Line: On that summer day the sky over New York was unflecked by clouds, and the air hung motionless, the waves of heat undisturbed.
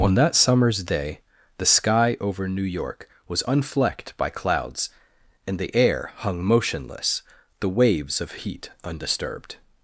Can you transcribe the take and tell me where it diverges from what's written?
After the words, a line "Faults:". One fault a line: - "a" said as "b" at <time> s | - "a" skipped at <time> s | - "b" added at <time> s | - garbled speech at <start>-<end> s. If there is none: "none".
On that summers day the sky over New York was unflecked by clouds, and the air hung motionless, the waves of heat undisturbed.
Faults:
- "summer" said as "summers" at 0.3 s